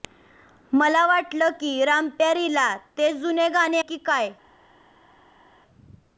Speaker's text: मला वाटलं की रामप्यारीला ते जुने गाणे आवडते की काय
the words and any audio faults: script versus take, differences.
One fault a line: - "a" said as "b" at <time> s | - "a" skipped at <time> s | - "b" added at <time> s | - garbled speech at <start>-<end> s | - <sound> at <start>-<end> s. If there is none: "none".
- "आवडते" skipped at 3.8 s